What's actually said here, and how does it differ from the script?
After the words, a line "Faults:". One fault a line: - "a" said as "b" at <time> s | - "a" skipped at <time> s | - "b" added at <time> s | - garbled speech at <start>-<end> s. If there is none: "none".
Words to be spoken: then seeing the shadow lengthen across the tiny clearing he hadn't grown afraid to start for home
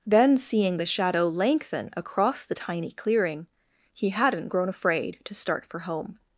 then seeing the shadow lengthen across the tiny clearing he hadn't grown afraid to start for home
Faults:
none